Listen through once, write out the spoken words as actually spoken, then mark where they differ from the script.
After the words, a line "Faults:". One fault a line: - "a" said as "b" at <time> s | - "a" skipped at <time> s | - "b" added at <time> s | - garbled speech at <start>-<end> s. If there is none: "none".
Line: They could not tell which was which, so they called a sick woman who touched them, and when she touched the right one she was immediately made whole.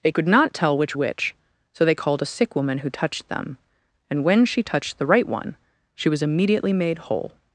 They could not tell which which, so they called a sick woman who touched them, and when she touched the right one she was immediately made whole.
Faults:
- "was" skipped at 0.9 s